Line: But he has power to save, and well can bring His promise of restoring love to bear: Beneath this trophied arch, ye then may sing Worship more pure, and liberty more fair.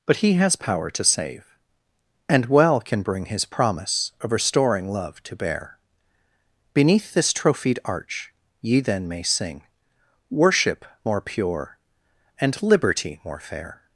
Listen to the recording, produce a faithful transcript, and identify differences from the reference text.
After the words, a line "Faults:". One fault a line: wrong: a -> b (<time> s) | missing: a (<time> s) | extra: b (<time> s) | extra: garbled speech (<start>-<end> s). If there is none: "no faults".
But he has power to save, and well can bring His promise of restoring love to bear: Beneath this trophied arch, ye then may sing Worship more pure, and liberty more fair.
Faults:
no faults